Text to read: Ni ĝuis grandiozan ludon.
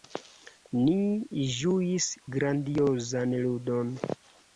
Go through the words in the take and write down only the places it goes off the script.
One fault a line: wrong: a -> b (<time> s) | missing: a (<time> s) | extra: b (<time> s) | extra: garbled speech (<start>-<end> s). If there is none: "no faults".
no faults